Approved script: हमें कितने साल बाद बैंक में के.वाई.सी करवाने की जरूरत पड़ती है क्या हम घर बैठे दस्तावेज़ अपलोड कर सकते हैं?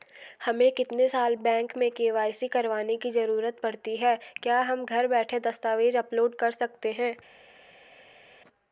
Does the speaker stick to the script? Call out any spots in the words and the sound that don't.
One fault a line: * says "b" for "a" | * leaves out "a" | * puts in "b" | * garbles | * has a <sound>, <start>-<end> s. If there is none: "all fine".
* leaves out "बाद"